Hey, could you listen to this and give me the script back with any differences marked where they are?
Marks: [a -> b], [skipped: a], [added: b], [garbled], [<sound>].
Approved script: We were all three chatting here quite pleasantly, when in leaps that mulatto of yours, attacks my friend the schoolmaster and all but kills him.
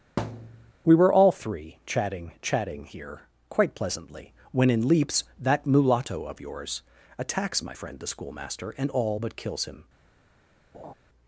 [thud] We were all three chatting [added: chatting] here quite pleasantly, when in leaps that mulatto of yours, attacks my friend the schoolmaster and all but kills him. [laugh]